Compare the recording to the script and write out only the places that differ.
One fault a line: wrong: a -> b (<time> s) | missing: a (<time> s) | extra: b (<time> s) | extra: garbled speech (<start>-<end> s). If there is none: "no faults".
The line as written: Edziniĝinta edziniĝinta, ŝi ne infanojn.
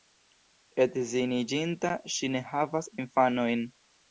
missing: edziniĝinta (1.9 s)
extra: havas (2.5 s)